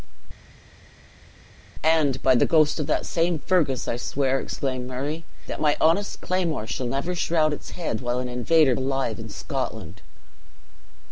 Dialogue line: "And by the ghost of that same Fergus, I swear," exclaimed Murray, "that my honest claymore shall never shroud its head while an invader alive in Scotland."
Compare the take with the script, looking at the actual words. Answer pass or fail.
pass